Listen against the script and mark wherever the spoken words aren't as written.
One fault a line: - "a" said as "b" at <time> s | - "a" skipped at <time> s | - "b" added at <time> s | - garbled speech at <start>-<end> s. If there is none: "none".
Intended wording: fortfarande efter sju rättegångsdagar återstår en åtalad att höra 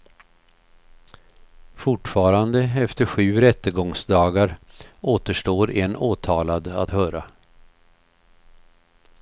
none